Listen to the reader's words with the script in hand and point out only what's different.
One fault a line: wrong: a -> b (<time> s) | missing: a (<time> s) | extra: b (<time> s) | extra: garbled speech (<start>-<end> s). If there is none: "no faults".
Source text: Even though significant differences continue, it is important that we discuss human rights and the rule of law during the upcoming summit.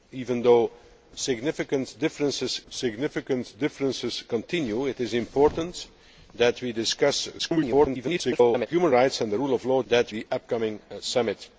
extra: significant differences (2.7 s)
extra: garbled speech (7.4-8.7 s)
wrong: during -> that (9.9 s)